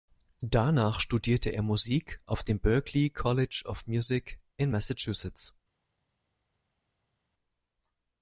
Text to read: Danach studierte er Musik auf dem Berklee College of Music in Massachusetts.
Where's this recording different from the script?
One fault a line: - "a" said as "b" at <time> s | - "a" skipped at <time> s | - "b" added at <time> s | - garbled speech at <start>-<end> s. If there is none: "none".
none